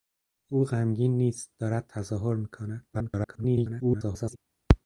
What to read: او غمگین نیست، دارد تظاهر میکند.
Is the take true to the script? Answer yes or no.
no